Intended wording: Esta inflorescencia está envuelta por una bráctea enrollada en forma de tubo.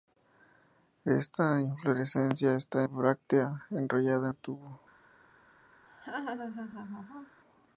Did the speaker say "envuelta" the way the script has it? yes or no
no